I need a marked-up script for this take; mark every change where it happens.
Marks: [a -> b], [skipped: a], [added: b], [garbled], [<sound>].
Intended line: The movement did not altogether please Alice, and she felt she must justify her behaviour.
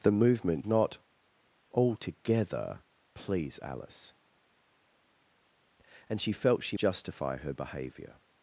The movement [skipped: did] not altogether please Alice, and she felt she [skipped: must] justify her behaviour.